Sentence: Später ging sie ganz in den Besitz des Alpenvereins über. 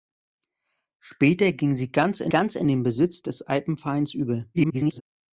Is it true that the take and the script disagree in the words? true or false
true